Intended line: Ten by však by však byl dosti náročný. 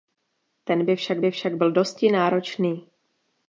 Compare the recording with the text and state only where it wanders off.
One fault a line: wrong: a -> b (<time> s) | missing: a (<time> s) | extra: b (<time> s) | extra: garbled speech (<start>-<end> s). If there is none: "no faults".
no faults